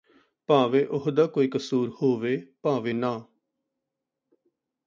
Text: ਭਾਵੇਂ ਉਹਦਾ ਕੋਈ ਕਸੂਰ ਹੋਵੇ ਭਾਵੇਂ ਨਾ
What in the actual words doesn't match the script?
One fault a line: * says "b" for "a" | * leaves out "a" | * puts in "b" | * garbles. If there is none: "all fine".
all fine